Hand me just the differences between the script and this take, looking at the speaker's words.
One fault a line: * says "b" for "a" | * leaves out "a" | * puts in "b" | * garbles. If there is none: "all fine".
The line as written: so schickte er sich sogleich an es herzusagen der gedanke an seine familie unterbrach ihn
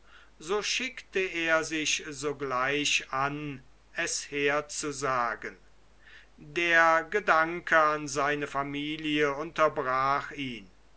all fine